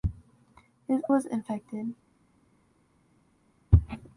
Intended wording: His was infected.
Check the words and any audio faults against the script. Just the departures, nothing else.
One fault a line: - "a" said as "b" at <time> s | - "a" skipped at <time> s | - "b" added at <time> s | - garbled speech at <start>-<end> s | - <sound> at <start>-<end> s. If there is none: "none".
none